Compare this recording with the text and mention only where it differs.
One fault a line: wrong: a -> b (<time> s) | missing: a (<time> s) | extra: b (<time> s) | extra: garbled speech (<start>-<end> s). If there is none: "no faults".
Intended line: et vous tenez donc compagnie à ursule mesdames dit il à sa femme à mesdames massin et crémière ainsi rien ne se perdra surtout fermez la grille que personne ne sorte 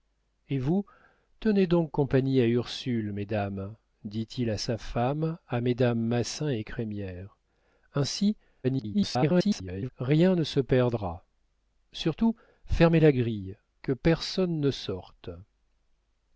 extra: garbled speech (8.6-9.9 s)